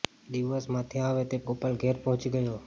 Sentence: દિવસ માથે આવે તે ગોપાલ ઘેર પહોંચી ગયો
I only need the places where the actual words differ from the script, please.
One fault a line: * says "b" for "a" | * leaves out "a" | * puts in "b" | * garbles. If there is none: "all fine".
all fine